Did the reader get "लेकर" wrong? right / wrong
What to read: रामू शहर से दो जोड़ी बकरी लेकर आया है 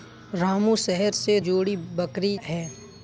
wrong